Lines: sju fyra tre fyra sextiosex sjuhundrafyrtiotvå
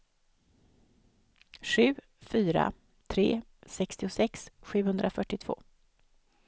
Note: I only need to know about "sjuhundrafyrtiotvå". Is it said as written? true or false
true